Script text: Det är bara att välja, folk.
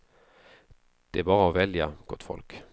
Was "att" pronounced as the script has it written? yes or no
yes